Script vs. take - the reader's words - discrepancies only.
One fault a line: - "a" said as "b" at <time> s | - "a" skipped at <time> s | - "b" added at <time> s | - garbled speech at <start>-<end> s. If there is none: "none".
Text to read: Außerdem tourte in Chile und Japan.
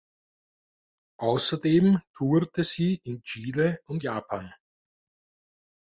- "sie" added at 2.6 s